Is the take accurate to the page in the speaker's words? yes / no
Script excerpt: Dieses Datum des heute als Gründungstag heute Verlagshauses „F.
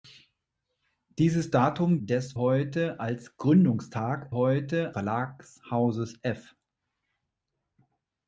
yes